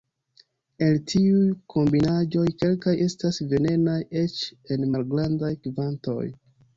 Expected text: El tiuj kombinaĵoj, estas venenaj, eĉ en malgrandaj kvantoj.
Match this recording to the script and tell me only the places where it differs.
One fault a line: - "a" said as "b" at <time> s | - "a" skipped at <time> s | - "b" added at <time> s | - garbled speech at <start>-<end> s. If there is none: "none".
- "kelkaj" added at 2.6 s